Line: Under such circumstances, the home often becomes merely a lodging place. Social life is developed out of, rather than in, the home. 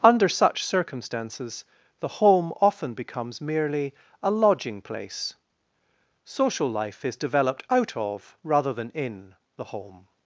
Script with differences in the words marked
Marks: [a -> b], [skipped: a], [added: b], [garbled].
Under such circumstances, the home often becomes merely a lodging place. Social life is developed out of, rather than in, the home.